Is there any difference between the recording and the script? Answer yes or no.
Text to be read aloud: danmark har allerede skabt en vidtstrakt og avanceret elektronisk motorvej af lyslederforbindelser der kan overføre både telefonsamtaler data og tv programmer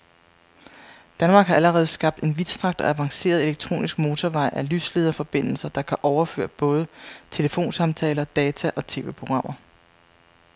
no